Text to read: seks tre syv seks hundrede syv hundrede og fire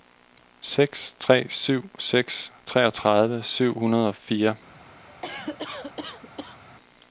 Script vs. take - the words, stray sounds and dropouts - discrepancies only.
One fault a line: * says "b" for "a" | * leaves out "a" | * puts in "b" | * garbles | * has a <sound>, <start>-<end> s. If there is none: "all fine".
* says "treogtredive" for "hundrede"
* has a cough, 5.1-6.6 s